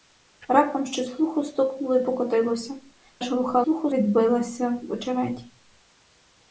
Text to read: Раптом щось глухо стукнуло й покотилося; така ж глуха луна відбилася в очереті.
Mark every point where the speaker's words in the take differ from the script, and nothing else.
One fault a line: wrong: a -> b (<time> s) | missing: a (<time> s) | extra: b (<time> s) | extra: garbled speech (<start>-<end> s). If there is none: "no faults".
missing: така (2.7 s)
wrong: луна -> глухо (3.6 s)